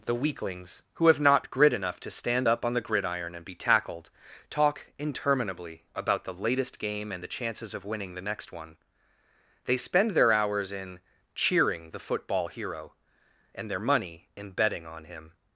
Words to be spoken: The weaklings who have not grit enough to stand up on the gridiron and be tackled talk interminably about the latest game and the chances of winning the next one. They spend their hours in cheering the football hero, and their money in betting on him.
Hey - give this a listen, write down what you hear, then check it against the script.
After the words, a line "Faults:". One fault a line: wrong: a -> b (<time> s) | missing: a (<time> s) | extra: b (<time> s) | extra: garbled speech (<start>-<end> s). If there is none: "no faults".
The weaklings who have not grit enough to stand up on the gridiron and be tackled talk interminably about the latest game and the chances of winning the next one. They spend their hours in cheering the football hero, and their money in betting on him.
Faults:
no faults